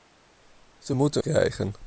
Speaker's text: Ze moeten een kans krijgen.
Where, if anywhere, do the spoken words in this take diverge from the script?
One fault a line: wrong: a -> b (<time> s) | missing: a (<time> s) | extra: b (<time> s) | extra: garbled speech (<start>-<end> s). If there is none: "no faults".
missing: een kans (1.2 s)